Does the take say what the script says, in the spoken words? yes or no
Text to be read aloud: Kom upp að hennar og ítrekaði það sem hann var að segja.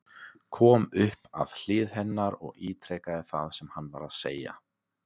no